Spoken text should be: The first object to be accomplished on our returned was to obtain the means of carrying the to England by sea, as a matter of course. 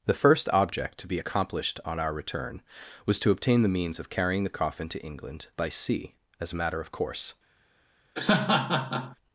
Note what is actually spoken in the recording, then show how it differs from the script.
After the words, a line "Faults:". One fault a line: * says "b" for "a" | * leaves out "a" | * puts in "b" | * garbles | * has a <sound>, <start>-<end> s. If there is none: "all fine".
The first object to be accomplished on our return was to obtain the means of carrying the coffin to England by sea, as a matter of course.
Faults:
* says "return" for "returned"
* puts in "coffin"
* has a laugh, 8.2-9.2 s